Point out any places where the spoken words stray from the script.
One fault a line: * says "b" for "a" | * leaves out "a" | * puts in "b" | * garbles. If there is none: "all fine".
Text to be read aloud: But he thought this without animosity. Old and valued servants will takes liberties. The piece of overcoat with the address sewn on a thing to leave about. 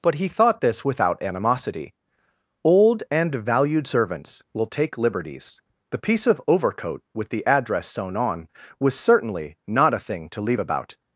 * says "take" for "takes"
* puts in "was certainly not"